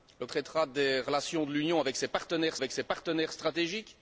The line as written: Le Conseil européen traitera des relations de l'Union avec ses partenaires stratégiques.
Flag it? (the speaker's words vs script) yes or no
yes